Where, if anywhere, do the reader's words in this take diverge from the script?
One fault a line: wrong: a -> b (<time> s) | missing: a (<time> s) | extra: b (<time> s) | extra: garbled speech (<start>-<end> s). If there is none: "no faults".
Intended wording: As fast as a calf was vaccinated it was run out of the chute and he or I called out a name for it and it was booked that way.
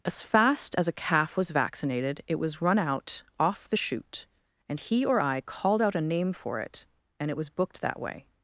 wrong: of -> off (3.4 s)